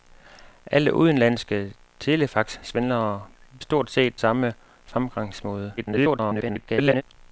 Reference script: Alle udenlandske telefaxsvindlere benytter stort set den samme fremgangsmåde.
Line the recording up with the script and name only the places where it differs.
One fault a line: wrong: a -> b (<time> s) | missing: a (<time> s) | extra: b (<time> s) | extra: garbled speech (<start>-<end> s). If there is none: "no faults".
missing: benytter (3.2 s)
missing: den (4.2 s)
extra: garbled speech (5.8-7.0 s)